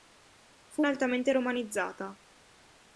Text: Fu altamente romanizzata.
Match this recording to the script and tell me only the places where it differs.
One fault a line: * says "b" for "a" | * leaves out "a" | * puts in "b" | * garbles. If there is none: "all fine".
all fine